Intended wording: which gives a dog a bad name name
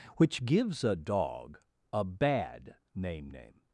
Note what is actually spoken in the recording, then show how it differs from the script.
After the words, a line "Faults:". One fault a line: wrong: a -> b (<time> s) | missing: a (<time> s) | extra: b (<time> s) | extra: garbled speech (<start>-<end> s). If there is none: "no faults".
which gives a dog a bad name name
Faults:
no faults